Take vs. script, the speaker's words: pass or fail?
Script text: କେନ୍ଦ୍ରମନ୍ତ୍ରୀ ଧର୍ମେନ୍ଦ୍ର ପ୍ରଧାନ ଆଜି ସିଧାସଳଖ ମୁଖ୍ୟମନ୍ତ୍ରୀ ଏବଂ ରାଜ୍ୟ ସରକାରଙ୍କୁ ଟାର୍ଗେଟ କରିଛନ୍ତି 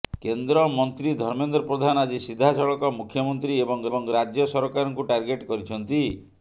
fail